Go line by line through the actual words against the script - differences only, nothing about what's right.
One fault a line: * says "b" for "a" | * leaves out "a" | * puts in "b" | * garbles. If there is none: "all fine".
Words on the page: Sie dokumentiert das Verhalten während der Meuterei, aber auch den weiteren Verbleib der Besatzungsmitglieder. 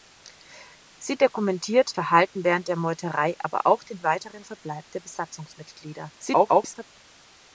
* leaves out "das"
* garbles